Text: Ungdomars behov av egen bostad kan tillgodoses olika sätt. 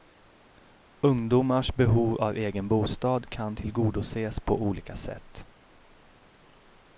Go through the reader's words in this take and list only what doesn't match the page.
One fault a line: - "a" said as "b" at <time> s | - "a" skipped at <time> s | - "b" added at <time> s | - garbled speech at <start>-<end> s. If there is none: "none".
- "på" added at 4.4 s